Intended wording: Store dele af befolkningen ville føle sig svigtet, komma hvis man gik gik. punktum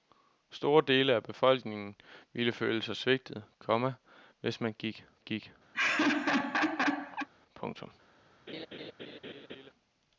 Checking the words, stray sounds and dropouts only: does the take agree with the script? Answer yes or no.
no